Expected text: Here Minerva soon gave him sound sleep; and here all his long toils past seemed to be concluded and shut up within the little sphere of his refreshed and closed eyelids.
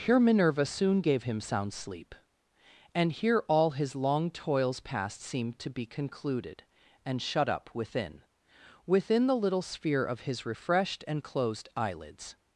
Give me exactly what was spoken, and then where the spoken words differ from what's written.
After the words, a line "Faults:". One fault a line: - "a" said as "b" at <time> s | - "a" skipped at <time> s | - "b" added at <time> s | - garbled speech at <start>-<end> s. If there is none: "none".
Here Minerva soon gave him sound sleep; and here all his long toils past seemed to be concluded and shut up within within the little sphere of his refreshed and closed eyelids.
Faults:
- "within" added at 8.8 s